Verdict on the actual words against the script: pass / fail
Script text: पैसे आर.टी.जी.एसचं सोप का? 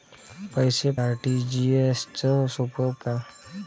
pass